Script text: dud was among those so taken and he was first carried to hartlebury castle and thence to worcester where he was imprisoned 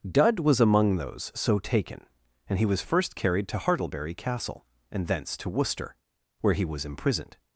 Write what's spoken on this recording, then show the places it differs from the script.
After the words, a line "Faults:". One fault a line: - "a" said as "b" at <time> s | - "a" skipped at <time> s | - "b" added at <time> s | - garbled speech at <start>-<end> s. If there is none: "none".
dud was among those so taken and he was first carried to hartlebury castle and thence to worcester where he was imprisoned
Faults:
none